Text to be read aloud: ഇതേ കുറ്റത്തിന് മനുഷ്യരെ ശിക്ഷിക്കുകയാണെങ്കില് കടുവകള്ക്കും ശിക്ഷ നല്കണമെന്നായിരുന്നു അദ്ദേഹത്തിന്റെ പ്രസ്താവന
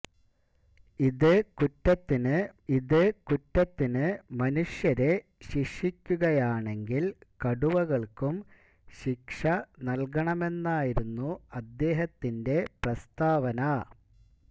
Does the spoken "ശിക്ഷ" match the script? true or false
true